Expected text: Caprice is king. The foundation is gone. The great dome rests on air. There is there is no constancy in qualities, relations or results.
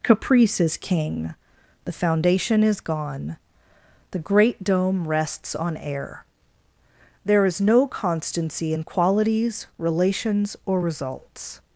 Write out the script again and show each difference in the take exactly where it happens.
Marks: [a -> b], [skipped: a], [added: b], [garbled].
Caprice is king. The foundation is gone. The great dome rests on air. There is [skipped: there is] no constancy in qualities, relations or results.